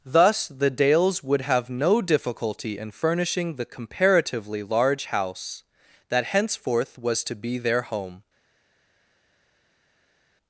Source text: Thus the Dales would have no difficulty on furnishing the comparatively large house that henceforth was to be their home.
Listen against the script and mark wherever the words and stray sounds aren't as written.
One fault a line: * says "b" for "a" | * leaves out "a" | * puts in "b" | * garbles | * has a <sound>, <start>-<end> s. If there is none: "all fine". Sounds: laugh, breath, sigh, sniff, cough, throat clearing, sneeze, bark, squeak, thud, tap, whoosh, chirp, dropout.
* says "in" for "on"